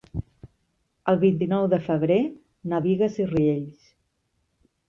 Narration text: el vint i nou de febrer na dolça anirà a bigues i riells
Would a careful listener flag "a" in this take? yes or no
yes